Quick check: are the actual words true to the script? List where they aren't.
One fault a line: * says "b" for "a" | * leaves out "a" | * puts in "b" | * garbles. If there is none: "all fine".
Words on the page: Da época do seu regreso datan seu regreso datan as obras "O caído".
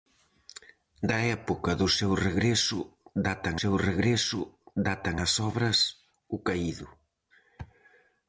all fine